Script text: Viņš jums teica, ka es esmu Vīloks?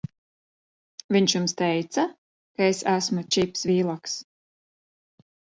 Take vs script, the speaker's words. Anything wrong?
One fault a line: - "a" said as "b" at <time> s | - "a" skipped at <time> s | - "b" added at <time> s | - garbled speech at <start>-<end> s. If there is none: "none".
- "Čips" added at 3.4 s